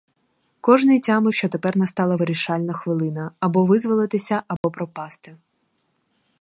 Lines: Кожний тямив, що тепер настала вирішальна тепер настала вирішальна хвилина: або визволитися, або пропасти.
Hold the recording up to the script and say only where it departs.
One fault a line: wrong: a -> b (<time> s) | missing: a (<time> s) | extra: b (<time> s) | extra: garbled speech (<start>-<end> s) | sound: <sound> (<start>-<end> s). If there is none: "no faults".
missing: тепер настала вирішальна (2.7 s)
sound: dropout (4.6-4.6 s)